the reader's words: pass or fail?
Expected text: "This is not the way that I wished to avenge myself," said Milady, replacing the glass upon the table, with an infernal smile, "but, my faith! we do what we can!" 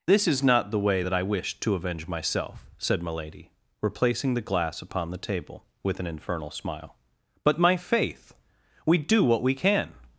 pass